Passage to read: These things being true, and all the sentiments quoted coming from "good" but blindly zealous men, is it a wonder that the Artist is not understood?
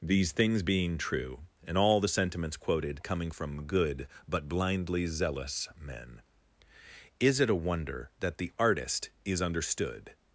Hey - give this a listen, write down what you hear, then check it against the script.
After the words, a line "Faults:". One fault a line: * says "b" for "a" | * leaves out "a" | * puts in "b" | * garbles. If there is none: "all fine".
These things being true, and all the sentiments quoted coming from "good" but blindly zealous men, is it a wonder that the Artist is understood?
Faults:
* leaves out "not"